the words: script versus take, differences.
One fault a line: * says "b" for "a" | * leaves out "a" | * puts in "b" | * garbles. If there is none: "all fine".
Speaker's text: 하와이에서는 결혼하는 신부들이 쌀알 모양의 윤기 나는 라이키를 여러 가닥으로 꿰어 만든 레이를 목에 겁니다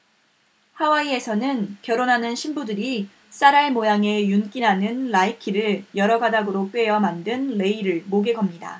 all fine